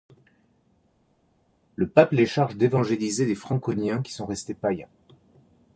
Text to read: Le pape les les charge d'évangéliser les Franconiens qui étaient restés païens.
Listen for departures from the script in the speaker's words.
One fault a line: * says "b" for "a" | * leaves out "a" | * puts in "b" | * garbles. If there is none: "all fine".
* leaves out "les"
* says "sont" for "étaient"